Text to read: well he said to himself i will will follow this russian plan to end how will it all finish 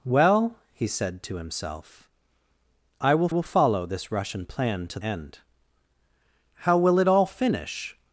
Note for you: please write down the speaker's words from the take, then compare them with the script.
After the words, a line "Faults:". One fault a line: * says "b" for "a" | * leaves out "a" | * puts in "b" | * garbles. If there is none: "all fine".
well he said to himself i will will follow this russian plan to end how will it all finish
Faults:
all fine